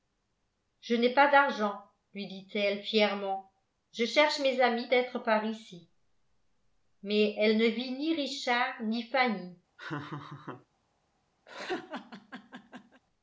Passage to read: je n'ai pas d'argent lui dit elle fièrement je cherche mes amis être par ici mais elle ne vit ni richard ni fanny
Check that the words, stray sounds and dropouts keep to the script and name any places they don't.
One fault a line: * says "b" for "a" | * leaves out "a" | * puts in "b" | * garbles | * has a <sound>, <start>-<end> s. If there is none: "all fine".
* has a laugh, 9.8-10.7 s
* has a laugh, 11.5-13.0 s